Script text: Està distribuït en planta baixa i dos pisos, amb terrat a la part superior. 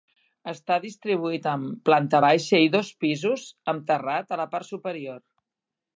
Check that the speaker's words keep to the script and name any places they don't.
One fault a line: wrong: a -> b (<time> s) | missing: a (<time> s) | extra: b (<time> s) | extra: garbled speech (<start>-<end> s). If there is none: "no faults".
no faults